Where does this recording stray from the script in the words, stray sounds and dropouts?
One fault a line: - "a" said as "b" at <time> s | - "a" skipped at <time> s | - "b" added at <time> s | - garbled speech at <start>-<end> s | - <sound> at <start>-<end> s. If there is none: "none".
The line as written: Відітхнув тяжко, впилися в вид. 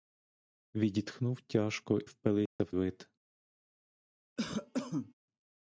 - dropout at 2.5-2.6 s
- cough at 4.4-5.1 s